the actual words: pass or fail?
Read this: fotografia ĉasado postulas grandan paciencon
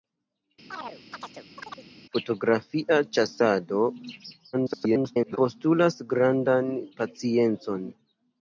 fail